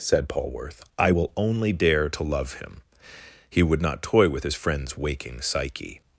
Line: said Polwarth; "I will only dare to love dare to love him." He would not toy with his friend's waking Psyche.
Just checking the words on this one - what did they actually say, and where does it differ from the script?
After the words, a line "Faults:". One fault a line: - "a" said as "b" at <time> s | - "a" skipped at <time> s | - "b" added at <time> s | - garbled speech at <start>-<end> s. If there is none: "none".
said Polwarth; "I will only dare to love him." He would not toy with his friend's waking Psyche.
Faults:
- "dare to love" skipped at 2.5 s